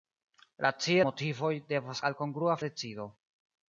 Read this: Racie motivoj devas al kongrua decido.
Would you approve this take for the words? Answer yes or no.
yes